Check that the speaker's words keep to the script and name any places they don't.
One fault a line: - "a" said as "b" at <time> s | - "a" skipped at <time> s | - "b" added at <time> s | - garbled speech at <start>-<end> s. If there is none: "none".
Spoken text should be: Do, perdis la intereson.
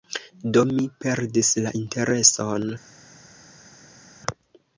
- "mi" added at 0.7 s